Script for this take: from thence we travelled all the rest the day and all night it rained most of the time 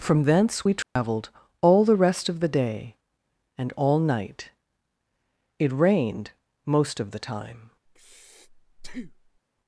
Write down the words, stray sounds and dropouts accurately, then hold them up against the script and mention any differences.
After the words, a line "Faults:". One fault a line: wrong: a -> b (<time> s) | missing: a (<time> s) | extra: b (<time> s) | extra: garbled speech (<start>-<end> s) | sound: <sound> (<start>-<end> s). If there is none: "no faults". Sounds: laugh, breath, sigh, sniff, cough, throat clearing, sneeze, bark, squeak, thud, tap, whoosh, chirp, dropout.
from thence we travelled all the rest of the day and all night it rained most of the time
Faults:
sound: dropout (0.8-1.0 s)
extra: of (2.3 s)
sound: breath (7.9-9.4 s)